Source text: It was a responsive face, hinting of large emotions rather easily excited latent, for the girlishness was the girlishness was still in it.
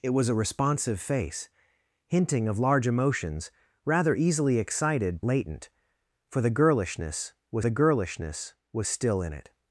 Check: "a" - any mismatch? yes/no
no